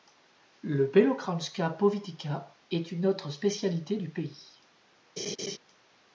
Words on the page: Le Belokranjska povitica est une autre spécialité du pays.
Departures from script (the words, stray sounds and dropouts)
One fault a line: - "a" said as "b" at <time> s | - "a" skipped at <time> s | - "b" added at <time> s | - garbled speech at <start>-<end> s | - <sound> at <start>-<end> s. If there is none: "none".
- laugh at 5.2-5.6 s